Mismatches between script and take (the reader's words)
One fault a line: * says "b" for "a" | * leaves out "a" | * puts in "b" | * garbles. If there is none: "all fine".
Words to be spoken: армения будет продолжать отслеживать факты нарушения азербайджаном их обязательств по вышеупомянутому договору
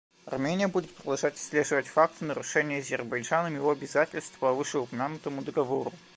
* says "его" for "их"